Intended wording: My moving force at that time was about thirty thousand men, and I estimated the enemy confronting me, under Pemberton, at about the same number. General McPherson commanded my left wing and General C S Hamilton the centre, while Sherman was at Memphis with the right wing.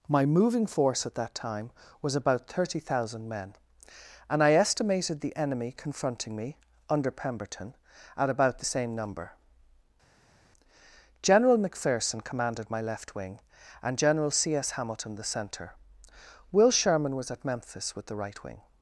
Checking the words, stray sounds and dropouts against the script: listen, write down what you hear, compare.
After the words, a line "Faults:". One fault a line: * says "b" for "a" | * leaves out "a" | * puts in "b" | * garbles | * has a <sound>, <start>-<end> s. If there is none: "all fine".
My moving force at that time was about thirty thousand men, and I estimated the enemy confronting me, under Pemberton, at about the same number. General McPherson commanded my left wing and General C S Hamilton the centre, will Sherman was at Memphis with the right wing.
Faults:
* says "will" for "while"